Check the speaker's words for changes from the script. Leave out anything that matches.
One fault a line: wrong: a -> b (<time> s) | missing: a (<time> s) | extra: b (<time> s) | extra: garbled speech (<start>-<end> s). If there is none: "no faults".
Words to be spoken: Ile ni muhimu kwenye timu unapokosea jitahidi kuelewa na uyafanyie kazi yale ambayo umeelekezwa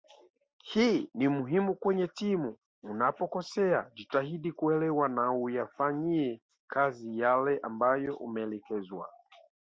wrong: Ile -> Hii (0.6 s)